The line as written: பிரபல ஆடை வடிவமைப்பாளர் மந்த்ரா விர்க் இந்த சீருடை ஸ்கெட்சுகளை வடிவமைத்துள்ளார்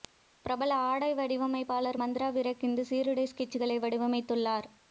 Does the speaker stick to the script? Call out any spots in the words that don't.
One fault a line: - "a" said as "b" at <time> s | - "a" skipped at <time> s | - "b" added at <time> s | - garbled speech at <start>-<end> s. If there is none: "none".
none